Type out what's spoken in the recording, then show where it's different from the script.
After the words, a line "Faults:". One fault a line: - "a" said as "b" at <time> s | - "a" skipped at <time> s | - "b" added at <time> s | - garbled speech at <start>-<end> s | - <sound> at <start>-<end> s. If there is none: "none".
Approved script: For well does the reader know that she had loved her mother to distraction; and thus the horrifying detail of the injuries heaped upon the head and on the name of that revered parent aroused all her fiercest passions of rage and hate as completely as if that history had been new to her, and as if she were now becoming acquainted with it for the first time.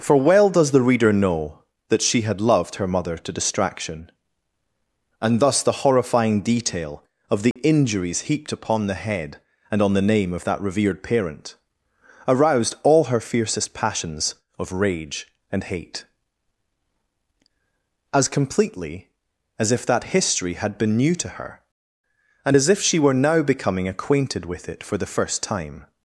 For well does the reader know that she had loved her mother to distraction; and thus the horrifying detail of the injuries heaped upon the head and on the name of that revered parent aroused all her fiercest passions of rage and hate as completely as if that history had been new to her, and as if she were now becoming acquainted with it for the first time.
Faults:
- dropout at 7.5-7.6 s